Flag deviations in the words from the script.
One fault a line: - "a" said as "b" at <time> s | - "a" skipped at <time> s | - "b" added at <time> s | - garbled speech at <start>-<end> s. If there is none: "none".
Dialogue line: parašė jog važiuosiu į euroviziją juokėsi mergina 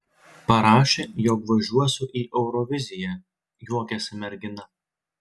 none